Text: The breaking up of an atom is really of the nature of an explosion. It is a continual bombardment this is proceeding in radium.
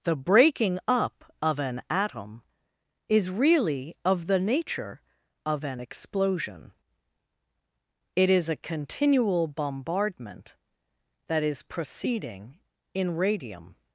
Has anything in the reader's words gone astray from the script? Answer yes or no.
yes